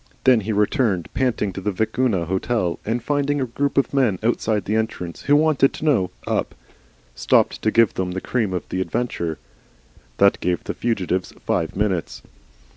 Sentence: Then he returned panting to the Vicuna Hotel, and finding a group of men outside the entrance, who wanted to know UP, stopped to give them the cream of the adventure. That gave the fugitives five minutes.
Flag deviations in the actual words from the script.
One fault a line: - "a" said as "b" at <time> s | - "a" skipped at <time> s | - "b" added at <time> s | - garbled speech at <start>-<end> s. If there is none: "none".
none